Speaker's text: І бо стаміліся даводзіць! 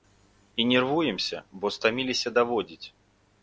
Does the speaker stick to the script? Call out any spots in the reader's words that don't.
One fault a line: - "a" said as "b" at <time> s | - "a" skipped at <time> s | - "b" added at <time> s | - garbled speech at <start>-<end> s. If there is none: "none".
- "нервуемся" added at 0.7 s